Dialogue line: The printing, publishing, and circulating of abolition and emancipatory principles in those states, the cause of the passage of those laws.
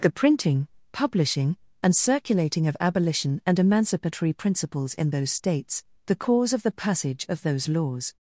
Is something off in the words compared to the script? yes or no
no